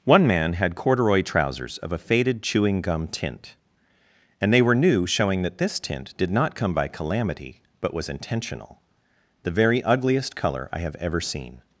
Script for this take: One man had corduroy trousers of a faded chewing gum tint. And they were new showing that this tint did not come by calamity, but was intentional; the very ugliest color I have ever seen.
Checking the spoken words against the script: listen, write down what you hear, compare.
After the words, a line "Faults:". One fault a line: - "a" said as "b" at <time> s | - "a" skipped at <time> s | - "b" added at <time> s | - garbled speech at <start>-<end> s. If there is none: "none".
One man had corduroy trousers of a faded chewing gum tint. And they were new showing that this tint did not come by calamity, but was intentional; the very ugliest color I have ever seen.
Faults:
none